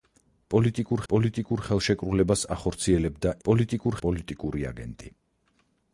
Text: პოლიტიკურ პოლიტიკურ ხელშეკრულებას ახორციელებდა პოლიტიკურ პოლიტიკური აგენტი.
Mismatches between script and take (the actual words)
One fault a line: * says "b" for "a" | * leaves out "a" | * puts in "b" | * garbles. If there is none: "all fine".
all fine